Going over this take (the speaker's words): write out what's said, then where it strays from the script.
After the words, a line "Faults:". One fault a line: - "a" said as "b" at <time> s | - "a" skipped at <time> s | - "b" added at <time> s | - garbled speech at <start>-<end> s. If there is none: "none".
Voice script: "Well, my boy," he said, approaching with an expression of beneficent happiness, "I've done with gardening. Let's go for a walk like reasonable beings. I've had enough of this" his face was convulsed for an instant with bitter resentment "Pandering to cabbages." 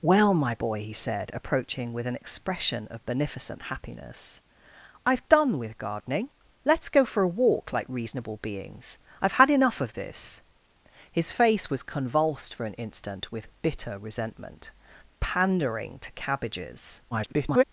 "Well, my boy," he said, approaching with an expression of beneficent happiness, "I've done with gardening. Let's go for a walk like reasonable beings. I've had enough of this" his face was convulsed for an instant with bitter resentment "Pandering to cabbages." [garbled]
Faults:
- garbled speech at 17.1-17.6 s